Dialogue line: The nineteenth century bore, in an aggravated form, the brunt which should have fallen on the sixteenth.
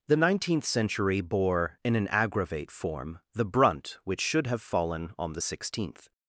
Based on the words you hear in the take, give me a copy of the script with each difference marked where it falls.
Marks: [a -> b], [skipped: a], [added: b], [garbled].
The nineteenth century bore, in an [aggravated -> aggravate] form, the brunt which should have fallen on the sixteenth.